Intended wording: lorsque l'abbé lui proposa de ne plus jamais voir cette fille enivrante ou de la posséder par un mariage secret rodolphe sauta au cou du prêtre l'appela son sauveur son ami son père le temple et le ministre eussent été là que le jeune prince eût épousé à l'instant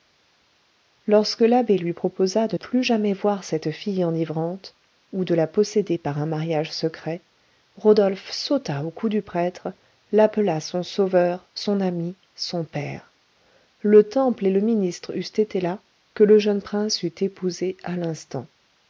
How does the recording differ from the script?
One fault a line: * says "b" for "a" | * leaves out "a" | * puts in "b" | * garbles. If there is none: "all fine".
* leaves out "ne"